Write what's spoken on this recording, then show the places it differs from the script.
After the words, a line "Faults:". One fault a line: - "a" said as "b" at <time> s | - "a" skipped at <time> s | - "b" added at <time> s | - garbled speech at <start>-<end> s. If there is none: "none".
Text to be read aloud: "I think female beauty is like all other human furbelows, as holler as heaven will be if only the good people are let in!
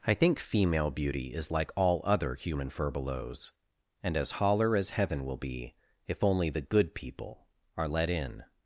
"I think female beauty is like all other human furbelows, and as holler as heaven will be if only the good people are let in!
Faults:
- "and" added at 4.0 s